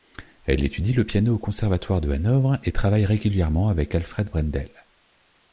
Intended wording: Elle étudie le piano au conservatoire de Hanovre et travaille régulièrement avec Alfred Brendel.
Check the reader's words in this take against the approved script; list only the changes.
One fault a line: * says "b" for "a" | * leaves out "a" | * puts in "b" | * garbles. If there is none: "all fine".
all fine